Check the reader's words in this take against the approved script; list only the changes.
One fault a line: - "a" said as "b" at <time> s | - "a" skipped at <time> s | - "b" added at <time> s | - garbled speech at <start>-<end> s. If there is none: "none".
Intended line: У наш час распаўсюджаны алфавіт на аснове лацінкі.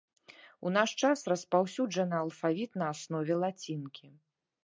none